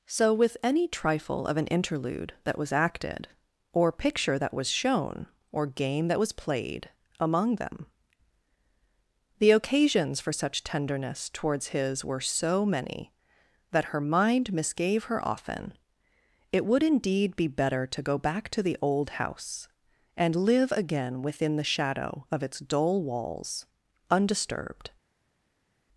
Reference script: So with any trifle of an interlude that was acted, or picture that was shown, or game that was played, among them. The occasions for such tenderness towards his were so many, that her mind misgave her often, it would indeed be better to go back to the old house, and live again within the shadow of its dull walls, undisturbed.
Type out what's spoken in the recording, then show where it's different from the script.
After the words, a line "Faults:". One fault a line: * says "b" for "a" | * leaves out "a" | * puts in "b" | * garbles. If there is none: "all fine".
So with any trifle of an interlude that was acted, or picture that was shown, or game that was played, among them. The occasions for such tenderness towards his were so many, that her mind misgave her often, it would indeed be better to go back to the old house, and live again within the shadow of its dull walls, undisturbed.
Faults:
all fine